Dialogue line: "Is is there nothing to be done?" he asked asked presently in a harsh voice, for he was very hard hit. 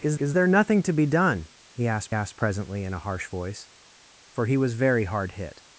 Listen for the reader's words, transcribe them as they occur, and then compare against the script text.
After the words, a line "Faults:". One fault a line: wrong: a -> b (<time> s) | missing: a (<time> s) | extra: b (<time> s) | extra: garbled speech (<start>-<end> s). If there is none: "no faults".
"Is is there nothing to be done?" he asked asked presently in a harsh voice, for he was very hard hit.
Faults:
no faults